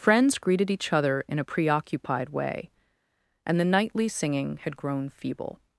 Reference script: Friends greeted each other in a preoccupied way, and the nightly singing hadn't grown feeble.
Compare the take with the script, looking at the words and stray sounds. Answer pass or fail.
fail